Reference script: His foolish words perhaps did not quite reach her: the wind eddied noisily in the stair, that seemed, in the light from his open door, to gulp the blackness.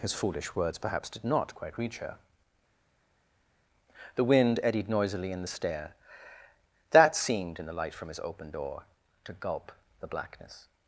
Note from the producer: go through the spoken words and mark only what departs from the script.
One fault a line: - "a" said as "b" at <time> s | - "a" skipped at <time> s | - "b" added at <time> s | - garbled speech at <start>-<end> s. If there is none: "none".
none